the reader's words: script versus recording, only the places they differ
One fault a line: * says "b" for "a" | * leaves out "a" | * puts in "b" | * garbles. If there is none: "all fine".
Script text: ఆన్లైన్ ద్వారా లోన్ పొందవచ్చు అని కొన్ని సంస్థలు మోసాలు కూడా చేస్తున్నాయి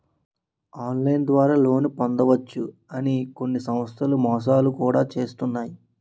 all fine